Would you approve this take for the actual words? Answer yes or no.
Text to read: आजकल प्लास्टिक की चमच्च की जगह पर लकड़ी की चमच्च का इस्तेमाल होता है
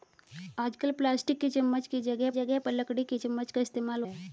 no